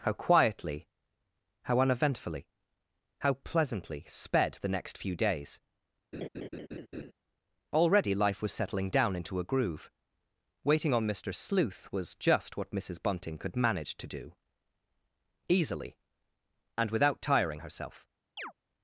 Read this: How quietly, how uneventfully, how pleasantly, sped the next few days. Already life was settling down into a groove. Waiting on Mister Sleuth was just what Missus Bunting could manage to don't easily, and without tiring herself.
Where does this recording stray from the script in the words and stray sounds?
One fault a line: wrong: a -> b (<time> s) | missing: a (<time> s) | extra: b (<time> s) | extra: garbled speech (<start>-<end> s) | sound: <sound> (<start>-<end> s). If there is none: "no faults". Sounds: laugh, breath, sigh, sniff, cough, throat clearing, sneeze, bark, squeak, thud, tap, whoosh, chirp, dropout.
sound: laugh (6.1-7.1 s)
wrong: don't -> do (14.1 s)
sound: chirp (18.4-18.5 s)